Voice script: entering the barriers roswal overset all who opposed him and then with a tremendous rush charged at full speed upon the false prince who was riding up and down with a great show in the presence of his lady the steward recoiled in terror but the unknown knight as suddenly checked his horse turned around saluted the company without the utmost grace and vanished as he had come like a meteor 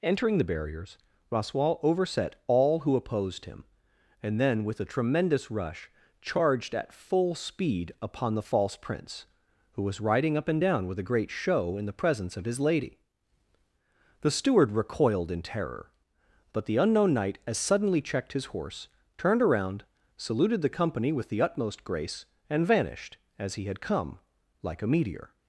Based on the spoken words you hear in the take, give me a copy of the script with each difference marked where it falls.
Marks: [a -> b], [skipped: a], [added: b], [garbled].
entering the barriers roswal overset all who opposed him and then with a tremendous rush charged at full speed upon the false prince who was riding up and down with a great show in the presence of his lady the steward recoiled in terror but the unknown knight as suddenly checked his horse turned around saluted the company [without -> with] the utmost grace and vanished as he had come like a meteor